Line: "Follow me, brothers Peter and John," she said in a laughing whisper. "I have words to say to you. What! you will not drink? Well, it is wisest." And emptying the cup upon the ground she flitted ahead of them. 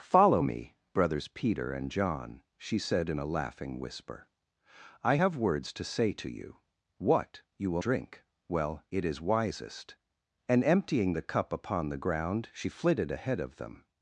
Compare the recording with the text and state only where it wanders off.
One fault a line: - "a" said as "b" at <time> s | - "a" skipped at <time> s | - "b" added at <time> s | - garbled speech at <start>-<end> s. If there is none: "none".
- "not" skipped at 7.8 s